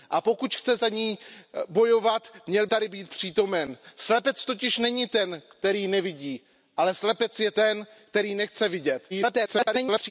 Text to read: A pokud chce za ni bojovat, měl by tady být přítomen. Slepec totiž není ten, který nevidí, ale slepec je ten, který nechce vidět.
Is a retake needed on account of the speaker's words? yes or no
yes